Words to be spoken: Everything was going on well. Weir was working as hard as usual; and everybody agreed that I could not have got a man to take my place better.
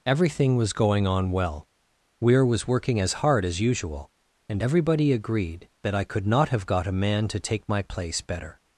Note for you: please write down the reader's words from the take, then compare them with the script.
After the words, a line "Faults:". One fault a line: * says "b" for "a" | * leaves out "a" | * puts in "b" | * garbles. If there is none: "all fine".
Everything was going on well. Weir was working as hard as usual; and everybody agreed that I could not have got a man to take my place better.
Faults:
all fine